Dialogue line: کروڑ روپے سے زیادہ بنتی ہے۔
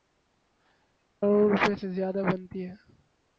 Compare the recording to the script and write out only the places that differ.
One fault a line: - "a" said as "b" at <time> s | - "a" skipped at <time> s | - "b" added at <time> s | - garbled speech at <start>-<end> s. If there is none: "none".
none